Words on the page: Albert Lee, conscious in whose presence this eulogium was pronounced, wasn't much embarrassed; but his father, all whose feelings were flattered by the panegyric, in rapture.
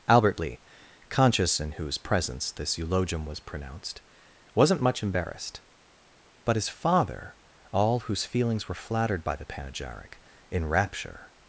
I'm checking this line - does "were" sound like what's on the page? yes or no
yes